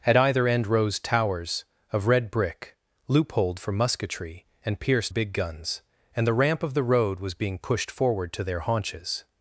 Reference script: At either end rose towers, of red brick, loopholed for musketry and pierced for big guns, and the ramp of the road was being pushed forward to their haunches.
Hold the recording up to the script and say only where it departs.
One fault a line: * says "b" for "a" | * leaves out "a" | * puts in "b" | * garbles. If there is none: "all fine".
* leaves out "for"